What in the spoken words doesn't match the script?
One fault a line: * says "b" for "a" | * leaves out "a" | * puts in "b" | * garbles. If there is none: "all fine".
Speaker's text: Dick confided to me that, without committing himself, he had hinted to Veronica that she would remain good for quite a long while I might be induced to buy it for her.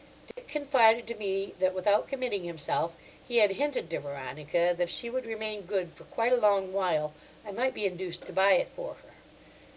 all fine